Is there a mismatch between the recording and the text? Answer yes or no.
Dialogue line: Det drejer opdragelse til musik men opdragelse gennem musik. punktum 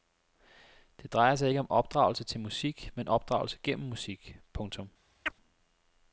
yes